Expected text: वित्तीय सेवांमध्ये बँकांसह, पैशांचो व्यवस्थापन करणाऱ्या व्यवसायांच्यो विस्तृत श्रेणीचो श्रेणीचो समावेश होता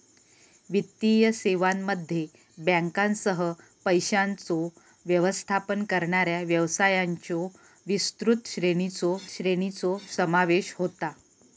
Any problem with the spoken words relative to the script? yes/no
no